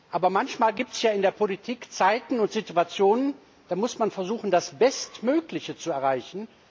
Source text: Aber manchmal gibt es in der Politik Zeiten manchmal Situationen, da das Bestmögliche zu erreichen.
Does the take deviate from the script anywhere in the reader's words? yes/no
yes